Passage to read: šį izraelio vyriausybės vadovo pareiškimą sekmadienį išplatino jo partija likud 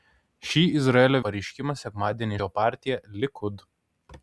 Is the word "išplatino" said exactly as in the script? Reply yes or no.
no